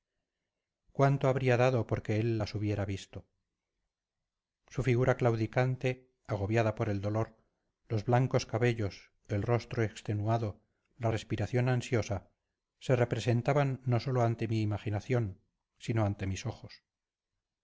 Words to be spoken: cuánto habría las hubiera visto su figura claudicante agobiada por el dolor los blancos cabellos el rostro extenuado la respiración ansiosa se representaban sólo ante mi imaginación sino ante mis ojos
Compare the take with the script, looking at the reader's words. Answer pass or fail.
fail